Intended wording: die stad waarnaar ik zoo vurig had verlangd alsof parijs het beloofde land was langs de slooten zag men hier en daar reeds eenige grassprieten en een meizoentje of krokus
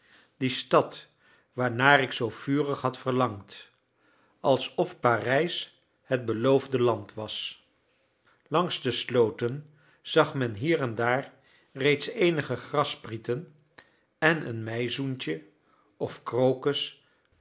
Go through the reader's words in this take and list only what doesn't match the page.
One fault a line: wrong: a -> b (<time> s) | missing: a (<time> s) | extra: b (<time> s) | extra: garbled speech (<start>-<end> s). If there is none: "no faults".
no faults